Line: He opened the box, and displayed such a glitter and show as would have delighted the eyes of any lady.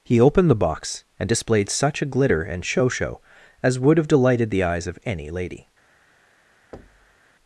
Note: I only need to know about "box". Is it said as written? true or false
true